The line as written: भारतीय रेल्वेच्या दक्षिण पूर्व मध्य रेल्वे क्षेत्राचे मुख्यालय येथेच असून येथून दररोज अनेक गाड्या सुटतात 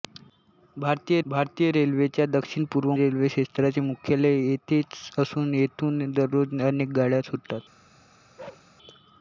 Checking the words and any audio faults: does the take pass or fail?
fail